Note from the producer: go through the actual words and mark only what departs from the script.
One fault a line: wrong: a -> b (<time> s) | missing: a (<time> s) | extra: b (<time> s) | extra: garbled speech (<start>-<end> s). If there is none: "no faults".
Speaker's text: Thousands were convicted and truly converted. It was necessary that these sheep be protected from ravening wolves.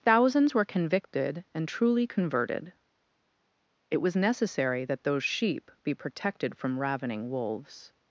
wrong: these -> those (5.0 s)